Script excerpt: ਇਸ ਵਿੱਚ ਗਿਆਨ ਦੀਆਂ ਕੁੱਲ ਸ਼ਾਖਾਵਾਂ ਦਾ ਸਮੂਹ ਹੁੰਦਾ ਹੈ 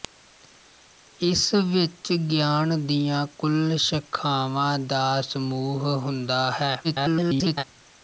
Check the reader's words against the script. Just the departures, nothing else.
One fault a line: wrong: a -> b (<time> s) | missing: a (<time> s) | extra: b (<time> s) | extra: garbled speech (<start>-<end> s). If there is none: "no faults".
extra: garbled speech (6.8-7.6 s)